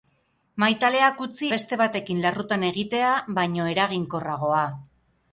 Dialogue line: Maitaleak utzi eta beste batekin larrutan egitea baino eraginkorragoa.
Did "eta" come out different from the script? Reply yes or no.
yes